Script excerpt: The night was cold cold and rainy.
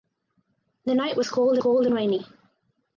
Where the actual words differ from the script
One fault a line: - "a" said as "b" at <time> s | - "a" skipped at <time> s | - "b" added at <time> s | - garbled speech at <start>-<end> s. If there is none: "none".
none